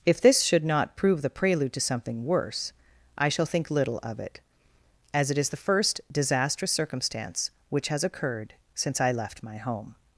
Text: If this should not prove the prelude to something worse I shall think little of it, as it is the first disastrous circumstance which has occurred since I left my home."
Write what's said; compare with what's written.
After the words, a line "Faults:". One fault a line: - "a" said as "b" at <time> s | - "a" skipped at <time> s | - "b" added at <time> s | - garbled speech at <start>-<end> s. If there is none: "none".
If this should not prove the prelude to something worse I shall think little of it, as it is the first disastrous circumstance which has occurred since I left my home."
Faults:
none